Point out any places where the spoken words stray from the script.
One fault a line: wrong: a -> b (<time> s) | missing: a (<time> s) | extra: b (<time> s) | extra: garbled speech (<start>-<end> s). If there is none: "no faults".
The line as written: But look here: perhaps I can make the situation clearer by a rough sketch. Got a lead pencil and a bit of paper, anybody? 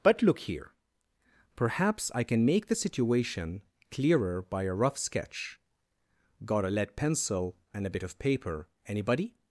no faults